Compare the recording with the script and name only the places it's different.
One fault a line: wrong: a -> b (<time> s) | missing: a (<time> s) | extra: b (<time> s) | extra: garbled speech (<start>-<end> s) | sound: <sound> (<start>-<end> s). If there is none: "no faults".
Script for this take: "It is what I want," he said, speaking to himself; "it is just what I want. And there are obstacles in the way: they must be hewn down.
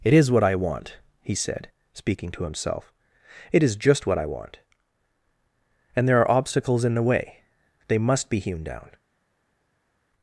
no faults